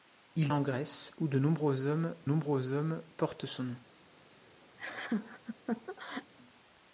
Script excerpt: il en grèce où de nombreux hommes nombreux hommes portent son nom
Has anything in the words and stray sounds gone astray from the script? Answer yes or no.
yes